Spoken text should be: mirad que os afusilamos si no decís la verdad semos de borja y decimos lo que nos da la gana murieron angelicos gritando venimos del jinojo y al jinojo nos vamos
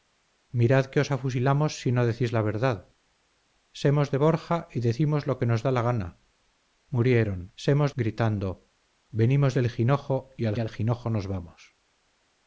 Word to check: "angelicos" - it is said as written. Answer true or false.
false